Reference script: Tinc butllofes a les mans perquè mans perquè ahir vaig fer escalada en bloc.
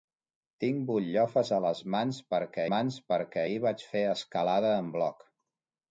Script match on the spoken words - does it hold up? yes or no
yes